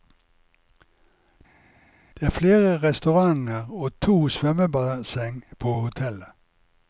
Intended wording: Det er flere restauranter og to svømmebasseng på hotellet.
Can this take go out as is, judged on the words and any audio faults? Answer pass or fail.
pass